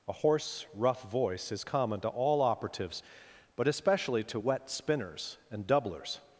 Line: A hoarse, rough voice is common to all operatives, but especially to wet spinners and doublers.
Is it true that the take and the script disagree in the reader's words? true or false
false